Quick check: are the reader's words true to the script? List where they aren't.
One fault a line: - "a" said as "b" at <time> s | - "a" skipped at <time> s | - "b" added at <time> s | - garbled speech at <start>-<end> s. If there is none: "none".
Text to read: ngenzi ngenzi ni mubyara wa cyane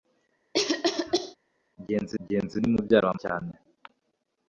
none